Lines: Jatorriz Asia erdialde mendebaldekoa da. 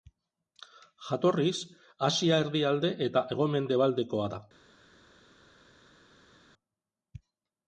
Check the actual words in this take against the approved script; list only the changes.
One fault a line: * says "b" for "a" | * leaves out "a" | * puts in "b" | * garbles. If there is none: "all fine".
* puts in "eta hego"